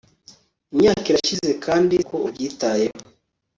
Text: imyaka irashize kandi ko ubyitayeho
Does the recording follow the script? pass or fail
pass